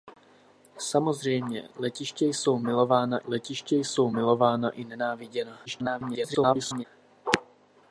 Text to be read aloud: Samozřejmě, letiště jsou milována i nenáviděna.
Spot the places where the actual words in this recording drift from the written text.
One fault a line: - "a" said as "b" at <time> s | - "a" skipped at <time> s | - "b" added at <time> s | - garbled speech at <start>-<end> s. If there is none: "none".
- "letiště jsou milována" added at 3.2 s
- garbled speech at 5.7-6.8 s